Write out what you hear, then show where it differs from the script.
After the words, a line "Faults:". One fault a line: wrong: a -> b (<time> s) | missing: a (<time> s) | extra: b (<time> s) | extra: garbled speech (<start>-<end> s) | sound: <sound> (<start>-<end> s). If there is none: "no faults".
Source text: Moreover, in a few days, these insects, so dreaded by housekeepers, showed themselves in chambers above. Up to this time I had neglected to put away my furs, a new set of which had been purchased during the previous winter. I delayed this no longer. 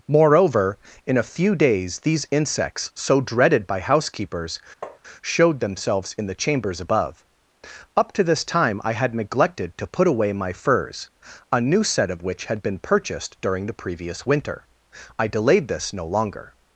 Moreover, in a few days, these insects, so dreaded by housekeepers, showed themselves in the chambers above. Up to this time I had neglected to put away my furs, a new set of which had been purchased during the previous winter. I delayed this no longer.
Faults:
sound: tap (4.8-5.0 s)
extra: the (6.3 s)